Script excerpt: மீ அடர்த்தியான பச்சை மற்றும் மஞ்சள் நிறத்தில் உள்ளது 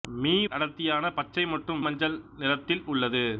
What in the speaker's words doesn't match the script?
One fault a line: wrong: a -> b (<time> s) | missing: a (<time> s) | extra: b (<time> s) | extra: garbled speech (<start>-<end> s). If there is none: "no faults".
no faults